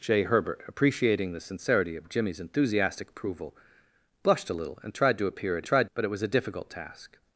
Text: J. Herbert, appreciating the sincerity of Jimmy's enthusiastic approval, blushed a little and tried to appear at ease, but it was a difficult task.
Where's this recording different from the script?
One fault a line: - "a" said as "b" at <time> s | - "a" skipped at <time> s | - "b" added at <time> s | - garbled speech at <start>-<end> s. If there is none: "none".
- "ease" said as "tried" at 5.6 s